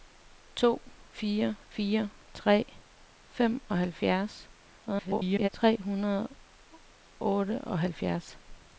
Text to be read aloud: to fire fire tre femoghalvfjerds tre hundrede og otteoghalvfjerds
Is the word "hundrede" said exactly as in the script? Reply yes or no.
yes